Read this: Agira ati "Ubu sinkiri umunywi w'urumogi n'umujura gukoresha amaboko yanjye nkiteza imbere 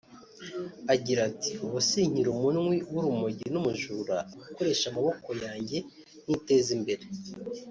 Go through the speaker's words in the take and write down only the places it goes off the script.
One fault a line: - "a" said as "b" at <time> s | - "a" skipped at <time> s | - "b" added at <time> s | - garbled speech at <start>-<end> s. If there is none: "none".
none